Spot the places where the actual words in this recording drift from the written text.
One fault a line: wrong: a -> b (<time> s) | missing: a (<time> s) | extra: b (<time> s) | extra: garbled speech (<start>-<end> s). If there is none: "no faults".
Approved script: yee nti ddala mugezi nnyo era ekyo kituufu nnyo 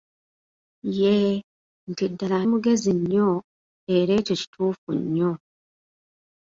no faults